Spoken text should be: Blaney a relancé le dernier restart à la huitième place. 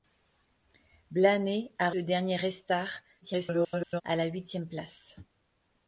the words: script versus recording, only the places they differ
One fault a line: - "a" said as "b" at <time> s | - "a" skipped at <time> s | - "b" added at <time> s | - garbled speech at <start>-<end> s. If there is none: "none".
- "relancé" skipped at 1.9 s
- garbled speech at 3.2-4.0 s